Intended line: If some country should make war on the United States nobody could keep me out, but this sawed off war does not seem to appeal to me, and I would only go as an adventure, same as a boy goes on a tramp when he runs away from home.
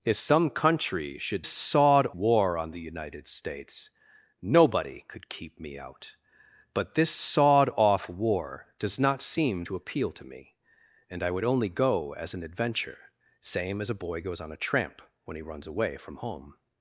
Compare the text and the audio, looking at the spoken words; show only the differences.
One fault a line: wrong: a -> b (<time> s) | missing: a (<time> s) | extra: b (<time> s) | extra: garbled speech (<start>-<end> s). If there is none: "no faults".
wrong: make -> sawed (1.5 s)